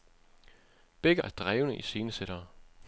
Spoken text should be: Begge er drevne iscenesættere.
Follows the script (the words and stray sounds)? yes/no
yes